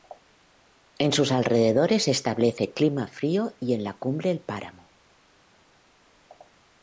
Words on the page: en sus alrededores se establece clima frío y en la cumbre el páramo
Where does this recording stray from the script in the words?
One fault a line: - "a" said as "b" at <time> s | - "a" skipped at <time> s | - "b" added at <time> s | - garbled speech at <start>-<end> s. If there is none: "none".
none